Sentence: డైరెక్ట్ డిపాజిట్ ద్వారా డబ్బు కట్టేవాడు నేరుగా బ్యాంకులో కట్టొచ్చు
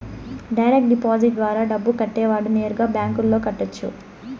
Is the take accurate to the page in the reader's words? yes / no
yes